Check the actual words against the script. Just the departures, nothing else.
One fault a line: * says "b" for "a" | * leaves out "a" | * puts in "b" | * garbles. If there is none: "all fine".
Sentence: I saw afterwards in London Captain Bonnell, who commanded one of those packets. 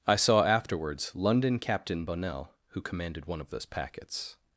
* leaves out "in"